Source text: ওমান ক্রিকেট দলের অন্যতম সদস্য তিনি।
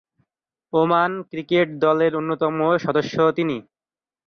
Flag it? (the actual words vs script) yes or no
no